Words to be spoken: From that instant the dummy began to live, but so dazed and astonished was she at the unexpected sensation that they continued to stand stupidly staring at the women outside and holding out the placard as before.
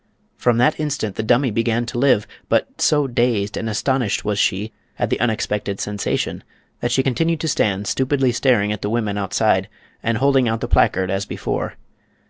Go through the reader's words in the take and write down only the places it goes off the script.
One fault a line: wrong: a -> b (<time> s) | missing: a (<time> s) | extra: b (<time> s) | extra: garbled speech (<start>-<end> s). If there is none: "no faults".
wrong: they -> she (6.9 s)